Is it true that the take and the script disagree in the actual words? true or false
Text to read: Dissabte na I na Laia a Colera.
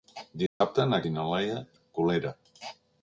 false